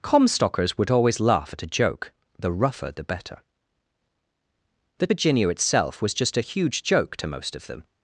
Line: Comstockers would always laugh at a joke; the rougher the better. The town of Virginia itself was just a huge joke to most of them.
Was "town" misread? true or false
true